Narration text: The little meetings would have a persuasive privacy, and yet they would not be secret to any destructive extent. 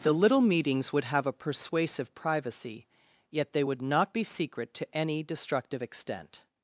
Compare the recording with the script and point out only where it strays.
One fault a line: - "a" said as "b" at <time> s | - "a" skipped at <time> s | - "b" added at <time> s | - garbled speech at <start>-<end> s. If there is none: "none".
- "and" skipped at 2.9 s